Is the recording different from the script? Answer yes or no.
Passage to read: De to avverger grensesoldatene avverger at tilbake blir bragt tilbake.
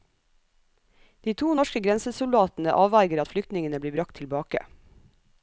yes